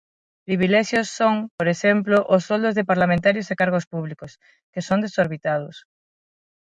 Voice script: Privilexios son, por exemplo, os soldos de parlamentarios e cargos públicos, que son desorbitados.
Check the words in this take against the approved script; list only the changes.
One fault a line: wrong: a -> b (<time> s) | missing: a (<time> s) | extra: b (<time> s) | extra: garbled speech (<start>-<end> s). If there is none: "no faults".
no faults